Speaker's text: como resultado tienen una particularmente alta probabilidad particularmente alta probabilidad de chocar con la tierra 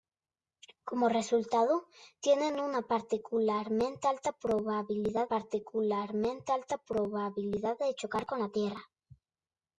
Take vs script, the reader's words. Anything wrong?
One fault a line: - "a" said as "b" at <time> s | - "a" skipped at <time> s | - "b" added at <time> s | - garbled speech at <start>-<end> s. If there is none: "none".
none